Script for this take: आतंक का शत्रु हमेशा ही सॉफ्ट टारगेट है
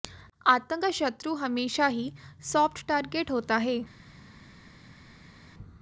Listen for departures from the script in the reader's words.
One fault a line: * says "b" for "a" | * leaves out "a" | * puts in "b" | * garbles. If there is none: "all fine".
* puts in "होता"